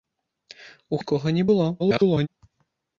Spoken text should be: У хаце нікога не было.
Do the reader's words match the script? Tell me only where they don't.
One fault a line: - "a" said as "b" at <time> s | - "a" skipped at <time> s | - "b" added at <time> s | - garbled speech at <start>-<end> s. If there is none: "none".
- "хаце" skipped at 1.0 s
- garbled speech at 1.8-2.3 s